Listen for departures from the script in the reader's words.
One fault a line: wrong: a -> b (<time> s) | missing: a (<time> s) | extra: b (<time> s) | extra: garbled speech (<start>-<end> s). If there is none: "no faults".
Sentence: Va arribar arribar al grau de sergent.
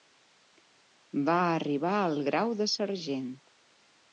missing: arribar (1.9 s)